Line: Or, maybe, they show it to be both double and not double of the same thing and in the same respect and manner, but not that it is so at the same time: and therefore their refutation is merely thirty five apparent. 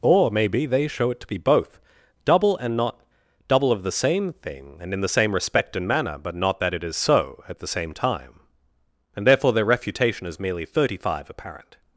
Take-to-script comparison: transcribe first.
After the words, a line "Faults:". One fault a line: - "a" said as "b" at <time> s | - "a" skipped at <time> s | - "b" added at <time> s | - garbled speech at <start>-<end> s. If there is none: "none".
Or, maybe, they show it to be both double and not double of the same thing and in the same respect and manner, but not that it is so at the same time: and therefore their refutation is merely thirty five apparent.
Faults:
none